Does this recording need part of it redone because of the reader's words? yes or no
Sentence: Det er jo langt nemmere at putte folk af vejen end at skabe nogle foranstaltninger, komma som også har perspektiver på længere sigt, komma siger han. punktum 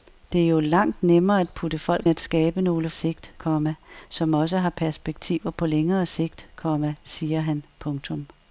yes